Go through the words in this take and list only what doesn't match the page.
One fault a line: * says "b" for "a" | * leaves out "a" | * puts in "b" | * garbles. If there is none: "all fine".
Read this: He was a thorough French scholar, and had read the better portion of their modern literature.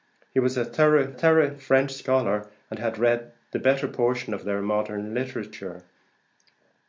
* puts in "thorough"